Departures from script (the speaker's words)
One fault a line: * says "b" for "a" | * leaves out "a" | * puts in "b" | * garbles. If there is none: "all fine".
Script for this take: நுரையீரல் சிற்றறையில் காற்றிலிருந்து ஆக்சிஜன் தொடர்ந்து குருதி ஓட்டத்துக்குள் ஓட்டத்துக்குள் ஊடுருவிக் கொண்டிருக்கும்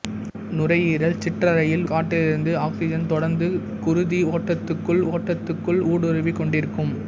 all fine